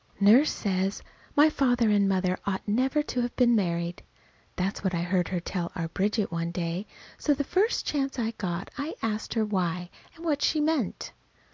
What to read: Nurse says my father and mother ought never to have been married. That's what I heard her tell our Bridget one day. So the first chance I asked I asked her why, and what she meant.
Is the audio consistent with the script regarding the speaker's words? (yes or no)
no